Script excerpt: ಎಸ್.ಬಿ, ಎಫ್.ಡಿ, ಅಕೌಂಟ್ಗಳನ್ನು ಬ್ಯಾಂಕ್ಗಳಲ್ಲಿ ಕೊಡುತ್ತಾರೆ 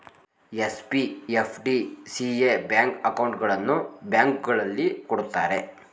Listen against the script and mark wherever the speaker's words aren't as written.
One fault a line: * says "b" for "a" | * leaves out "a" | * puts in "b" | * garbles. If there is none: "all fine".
* puts in "ಸಿ.ಎ ಬ್ಯಾಂಕ್"